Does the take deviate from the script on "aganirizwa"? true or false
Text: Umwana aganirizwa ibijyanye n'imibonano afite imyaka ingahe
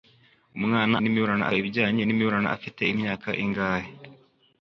true